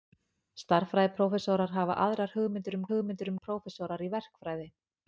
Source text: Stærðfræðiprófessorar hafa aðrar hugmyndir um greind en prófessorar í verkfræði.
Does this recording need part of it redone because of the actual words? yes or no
yes